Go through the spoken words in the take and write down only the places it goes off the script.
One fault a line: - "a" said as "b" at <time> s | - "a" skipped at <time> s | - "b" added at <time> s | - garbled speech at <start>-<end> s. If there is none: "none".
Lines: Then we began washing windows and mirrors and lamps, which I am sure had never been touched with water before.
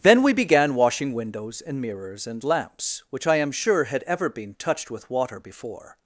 - "never" said as "ever" at 4.1 s